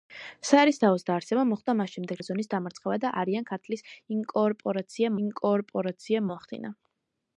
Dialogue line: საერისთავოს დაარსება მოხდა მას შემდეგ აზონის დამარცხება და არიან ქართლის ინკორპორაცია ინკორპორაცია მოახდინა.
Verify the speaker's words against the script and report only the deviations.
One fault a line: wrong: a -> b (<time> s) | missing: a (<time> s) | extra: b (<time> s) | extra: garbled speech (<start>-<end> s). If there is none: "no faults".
no faults